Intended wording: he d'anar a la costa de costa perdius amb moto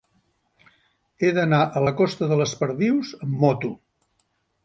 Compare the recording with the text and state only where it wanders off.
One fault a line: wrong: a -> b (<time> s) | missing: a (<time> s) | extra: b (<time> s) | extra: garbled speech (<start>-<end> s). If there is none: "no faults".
wrong: costa -> les (2.4 s)